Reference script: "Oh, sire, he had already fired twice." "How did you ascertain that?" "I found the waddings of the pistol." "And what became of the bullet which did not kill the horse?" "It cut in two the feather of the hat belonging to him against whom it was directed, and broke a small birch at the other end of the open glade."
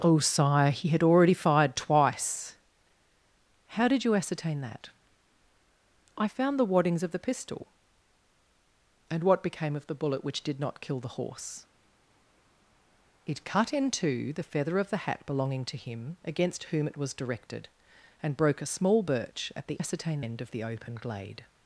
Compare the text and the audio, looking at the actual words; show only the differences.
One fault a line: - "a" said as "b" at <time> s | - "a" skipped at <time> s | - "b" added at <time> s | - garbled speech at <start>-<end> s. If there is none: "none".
- "other" said as "ascertain" at 19.8 s